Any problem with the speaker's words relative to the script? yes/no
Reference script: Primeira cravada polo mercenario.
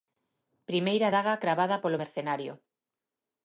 yes